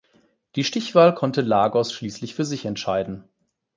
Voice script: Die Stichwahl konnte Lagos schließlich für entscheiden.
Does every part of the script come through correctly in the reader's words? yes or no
no